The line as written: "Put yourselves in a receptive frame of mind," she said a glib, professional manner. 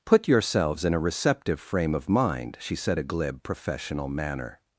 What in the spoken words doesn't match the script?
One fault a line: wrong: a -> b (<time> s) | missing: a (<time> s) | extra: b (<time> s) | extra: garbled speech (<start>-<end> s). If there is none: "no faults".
no faults